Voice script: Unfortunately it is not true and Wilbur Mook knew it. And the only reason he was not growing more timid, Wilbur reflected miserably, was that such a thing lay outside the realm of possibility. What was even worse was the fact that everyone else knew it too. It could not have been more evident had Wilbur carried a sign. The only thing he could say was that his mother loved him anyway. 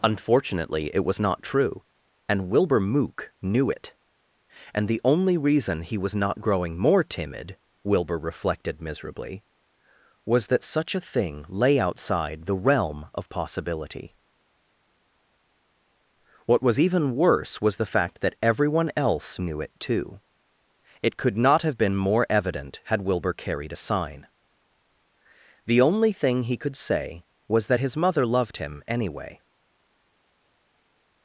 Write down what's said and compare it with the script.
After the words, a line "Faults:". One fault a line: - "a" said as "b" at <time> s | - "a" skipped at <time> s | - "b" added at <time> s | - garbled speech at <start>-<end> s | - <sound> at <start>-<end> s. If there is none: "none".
Unfortunately it was not true and Wilbur Mook knew it. And the only reason he was not growing more timid, Wilbur reflected miserably, was that such a thing lay outside the realm of possibility. What was even worse was the fact that everyone else knew it too. It could not have been more evident had Wilbur carried a sign. The only thing he could say was that his mother loved him anyway.
Faults:
- "is" said as "was" at 1.1 s